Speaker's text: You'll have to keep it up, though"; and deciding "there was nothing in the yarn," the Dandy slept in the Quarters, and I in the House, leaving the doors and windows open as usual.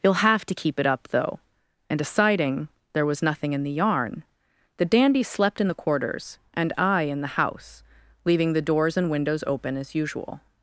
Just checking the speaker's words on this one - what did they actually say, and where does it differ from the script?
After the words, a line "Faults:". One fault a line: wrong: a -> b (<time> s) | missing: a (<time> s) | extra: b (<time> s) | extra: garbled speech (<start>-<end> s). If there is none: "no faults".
You'll have to keep it up, though"; and deciding "there was nothing in the yarn," the Dandy slept in the Quarters, and I in the House, leaving the doors and windows open as usual.
Faults:
no faults